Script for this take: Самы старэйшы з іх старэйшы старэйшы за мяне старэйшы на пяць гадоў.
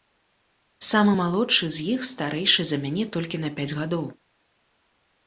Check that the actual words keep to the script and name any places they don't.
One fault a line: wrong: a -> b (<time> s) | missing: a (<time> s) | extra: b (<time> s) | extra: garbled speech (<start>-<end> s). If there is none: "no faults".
wrong: старэйшы -> малодшы (1.2 s)
missing: старэйшы (2.6 s)
wrong: старэйшы -> толькі (3.2 s)